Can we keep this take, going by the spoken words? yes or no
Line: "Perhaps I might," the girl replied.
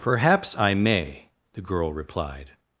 no